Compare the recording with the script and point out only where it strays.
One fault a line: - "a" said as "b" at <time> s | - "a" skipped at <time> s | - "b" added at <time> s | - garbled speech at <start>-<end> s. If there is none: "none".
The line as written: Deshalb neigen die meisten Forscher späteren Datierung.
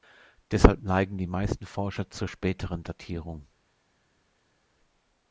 - "zur" added at 2.1 s